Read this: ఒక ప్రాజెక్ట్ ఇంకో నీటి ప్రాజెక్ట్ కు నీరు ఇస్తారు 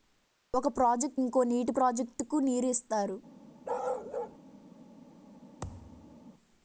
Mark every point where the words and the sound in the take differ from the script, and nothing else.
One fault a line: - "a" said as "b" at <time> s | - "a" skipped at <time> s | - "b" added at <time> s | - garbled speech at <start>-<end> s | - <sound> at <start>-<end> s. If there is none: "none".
- bark at 3.6-4.4 s
- thud at 5.6-6.2 s